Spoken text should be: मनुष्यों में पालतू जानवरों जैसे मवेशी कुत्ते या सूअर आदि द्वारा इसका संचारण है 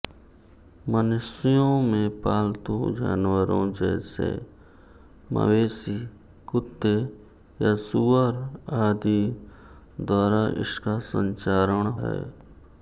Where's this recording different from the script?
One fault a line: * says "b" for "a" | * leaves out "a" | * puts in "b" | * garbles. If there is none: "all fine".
all fine